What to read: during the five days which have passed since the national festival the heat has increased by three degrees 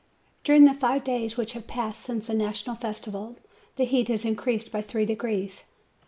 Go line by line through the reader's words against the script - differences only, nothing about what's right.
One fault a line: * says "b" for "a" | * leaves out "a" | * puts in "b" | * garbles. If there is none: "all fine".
all fine